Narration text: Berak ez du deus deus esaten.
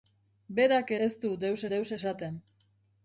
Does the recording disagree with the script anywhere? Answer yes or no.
no